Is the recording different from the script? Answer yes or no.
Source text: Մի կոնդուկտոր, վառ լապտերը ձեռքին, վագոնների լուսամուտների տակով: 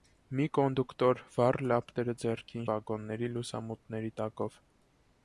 no